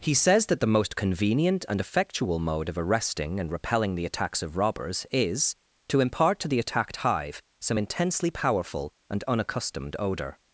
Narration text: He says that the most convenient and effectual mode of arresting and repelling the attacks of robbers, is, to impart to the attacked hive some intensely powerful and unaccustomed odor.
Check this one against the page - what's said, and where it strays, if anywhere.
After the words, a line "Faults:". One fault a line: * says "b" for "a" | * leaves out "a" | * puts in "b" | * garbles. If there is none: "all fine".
He says that the most convenient and effectual mode of arresting and repelling the attacks of robbers, is, to impart to the attacked hive some intensely powerful and unaccustomed odor.
Faults:
all fine